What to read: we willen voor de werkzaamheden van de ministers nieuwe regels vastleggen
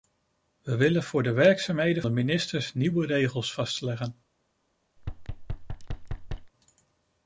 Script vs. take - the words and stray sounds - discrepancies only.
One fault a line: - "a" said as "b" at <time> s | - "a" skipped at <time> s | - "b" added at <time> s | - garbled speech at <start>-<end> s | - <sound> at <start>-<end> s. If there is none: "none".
- "van" skipped at 2.0 s
- thud at 5.0-6.5 s